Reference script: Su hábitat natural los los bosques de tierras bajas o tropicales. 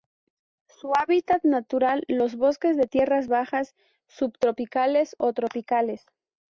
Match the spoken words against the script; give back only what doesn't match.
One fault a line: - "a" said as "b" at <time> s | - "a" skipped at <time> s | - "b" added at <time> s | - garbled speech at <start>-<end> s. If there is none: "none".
- "los" skipped at 2.4 s
- "subtropicales" added at 4.1 s